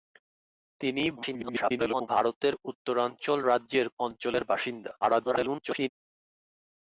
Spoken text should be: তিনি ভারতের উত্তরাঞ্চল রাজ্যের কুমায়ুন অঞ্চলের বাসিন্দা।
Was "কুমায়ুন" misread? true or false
true